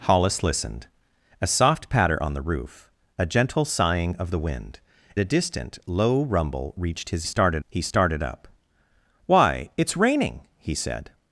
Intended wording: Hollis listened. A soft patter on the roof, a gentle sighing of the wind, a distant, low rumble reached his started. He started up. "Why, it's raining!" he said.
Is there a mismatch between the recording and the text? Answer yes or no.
no